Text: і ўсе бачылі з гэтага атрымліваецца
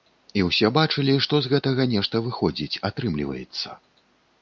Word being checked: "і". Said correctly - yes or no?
yes